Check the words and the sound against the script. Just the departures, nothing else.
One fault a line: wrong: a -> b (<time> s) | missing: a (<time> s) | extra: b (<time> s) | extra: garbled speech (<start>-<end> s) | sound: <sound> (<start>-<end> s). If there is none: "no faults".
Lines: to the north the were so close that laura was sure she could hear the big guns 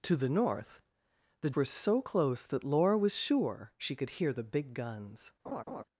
sound: laugh (5.5-5.8 s)